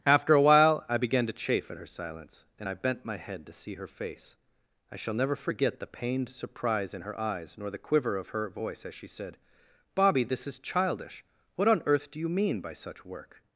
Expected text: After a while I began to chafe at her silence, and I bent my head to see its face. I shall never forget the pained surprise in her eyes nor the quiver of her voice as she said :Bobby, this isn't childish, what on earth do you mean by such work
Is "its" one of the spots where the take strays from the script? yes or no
yes